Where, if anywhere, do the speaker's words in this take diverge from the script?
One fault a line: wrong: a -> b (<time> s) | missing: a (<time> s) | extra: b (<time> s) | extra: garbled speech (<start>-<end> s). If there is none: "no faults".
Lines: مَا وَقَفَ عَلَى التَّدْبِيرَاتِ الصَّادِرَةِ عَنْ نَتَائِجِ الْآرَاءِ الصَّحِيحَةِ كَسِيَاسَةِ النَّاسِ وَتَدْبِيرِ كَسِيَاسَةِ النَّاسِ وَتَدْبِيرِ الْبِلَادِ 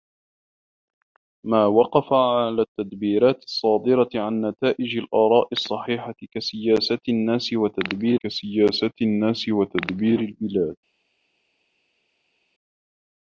no faults